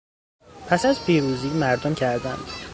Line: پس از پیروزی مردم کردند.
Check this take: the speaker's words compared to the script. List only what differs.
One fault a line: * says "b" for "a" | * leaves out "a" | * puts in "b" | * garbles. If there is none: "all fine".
all fine